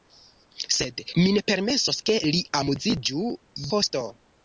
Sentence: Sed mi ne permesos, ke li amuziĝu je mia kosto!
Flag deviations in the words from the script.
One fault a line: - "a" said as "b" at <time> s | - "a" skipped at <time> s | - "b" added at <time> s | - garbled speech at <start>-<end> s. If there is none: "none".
- "je mia" skipped at 3.3 s